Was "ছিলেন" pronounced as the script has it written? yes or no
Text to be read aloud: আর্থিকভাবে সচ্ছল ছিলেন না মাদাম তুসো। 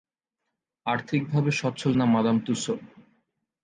no